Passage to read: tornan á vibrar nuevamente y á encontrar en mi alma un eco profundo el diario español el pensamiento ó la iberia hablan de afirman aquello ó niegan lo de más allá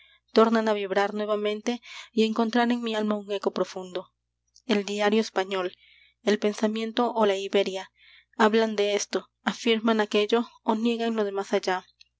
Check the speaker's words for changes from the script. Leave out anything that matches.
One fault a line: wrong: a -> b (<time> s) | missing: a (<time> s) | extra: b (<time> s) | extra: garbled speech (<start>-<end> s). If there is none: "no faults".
extra: esto (8.9 s)